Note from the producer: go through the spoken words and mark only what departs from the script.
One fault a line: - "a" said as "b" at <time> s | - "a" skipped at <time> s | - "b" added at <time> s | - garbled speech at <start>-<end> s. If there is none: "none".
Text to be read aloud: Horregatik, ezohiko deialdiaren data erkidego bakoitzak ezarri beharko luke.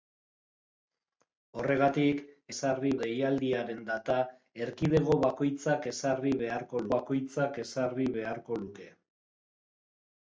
- "ezohiko" said as "ezarri" at 2.5 s
- "bakoitzak ezarri beharko" added at 7.0 s